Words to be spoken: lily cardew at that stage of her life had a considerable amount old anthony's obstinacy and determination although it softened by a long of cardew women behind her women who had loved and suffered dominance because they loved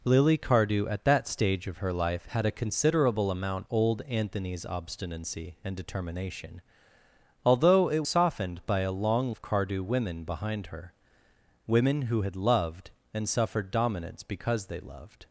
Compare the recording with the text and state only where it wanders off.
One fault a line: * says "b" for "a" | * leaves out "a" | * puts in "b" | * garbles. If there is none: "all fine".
all fine